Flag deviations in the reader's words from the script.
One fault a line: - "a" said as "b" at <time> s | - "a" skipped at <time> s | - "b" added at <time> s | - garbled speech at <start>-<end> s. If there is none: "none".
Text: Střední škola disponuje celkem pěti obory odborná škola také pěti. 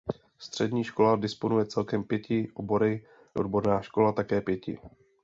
none